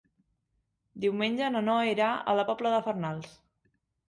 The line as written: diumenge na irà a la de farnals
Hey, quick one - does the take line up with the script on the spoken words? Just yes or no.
no